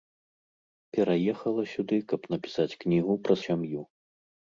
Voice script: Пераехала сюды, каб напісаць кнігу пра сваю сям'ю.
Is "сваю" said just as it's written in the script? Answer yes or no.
no